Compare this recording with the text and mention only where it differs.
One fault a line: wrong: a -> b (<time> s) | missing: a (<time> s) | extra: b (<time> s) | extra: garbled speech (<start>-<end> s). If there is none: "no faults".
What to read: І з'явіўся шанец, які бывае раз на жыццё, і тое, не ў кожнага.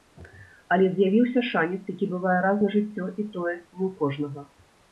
wrong: І -> Але (0.8 s)